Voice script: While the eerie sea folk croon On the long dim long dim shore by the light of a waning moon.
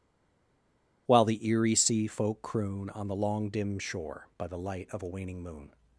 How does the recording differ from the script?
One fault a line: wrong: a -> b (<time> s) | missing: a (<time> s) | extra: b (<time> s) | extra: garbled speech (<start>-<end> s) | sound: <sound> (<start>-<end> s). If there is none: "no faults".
missing: long dim (3.8 s)